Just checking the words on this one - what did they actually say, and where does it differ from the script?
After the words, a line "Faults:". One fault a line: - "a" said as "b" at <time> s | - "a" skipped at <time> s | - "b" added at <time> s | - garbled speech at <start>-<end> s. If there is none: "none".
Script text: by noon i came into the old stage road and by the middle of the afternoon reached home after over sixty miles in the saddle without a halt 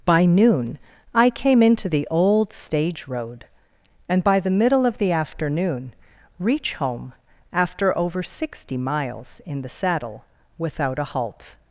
by noon i came into the old stage road and by the middle of the afternoon reach home after over sixty miles in the saddle without a halt
Faults:
- "reached" said as "reach" at 6.4 s